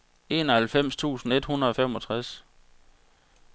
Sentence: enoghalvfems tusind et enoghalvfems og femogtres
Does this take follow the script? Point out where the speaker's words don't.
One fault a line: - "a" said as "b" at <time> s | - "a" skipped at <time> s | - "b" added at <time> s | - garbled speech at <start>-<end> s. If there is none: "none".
- "enoghalvfems" said as "hundrede" at 1.5 s